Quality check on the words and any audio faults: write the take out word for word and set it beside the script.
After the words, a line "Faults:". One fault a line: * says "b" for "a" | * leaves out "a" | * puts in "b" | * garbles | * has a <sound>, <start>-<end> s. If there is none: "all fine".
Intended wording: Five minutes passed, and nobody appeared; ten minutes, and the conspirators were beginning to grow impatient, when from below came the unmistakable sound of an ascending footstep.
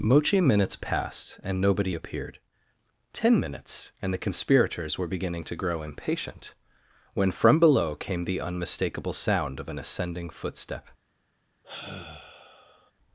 Mochi minutes passed, and nobody appeared; ten minutes, and the conspirators were beginning to grow impatient, when from below came the unmistakable sound of an ascending footstep.
Faults:
* says "Mochi" for "Five"
* has a sigh, 11.6-12.9 s